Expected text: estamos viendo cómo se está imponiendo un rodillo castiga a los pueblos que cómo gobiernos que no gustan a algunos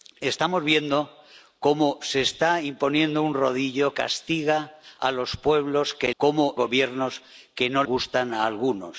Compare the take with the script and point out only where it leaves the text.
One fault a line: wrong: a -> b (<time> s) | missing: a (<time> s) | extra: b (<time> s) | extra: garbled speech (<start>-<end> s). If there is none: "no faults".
no faults